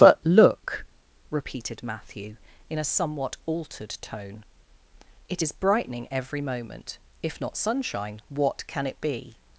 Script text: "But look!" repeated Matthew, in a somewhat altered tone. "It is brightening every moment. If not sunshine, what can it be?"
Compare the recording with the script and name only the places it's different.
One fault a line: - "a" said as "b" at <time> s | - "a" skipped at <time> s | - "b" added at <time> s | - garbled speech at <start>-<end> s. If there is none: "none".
none